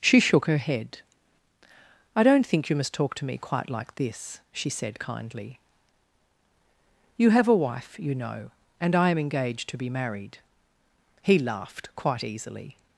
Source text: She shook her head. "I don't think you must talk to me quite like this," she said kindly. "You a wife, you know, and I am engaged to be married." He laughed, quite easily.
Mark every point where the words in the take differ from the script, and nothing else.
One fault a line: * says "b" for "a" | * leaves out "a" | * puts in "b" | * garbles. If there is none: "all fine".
* puts in "have"